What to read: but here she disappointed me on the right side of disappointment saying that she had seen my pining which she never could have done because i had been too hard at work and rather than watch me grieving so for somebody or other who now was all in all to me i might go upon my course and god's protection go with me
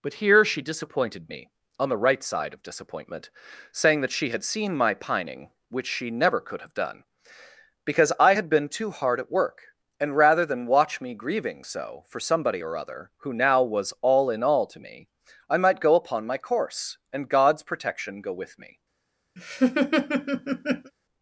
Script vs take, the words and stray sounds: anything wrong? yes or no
yes